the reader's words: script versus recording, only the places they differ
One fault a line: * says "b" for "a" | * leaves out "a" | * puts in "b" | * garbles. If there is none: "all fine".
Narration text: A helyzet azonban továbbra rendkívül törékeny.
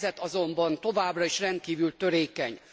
* puts in "is"